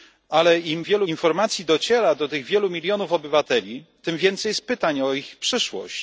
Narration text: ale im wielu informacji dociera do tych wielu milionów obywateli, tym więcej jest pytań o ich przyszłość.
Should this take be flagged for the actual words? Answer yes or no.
no